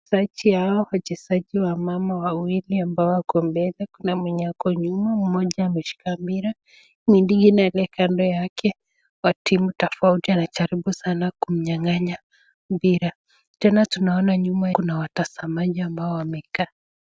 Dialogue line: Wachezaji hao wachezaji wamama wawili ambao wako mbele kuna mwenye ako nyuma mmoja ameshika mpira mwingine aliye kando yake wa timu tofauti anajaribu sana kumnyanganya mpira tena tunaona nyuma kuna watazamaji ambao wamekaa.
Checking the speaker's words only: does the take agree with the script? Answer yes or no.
yes